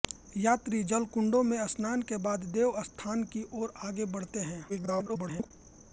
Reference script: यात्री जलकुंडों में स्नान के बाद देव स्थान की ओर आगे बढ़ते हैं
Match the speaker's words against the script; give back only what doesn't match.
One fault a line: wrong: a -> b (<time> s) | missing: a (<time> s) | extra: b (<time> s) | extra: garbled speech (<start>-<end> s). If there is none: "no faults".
extra: garbled speech (4.7-5.5 s)